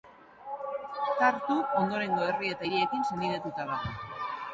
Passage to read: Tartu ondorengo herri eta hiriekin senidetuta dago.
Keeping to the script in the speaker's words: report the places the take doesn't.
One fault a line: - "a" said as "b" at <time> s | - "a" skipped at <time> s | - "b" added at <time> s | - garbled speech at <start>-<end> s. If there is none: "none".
none